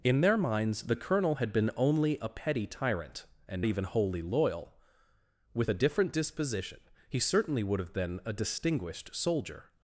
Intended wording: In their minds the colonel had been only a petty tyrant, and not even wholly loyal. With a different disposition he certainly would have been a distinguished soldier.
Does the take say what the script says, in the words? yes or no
no